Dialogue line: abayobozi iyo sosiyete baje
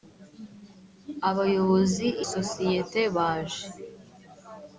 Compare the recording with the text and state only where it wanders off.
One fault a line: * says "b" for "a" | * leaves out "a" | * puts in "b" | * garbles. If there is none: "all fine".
* leaves out "iyo"